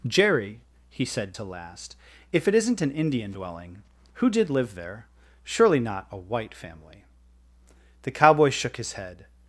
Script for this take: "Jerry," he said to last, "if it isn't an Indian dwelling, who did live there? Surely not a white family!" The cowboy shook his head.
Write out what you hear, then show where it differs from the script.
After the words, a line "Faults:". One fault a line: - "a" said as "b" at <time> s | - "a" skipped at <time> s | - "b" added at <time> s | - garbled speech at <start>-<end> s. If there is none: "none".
"Jerry," he said to last, "if it isn't an Indian dwelling, who did live there? Surely not a white family!" The cowboy shook his head.
Faults:
none